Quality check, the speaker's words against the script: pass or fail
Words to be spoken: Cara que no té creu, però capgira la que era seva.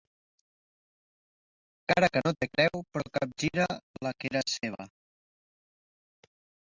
pass